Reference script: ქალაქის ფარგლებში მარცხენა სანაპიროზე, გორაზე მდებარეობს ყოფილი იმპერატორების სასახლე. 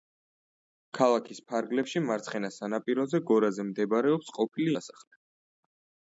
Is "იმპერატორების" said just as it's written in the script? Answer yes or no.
no